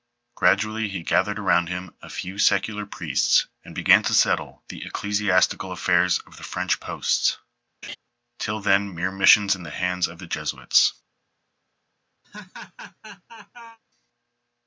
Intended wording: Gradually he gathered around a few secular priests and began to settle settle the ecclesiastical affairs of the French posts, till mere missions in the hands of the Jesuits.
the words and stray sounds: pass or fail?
fail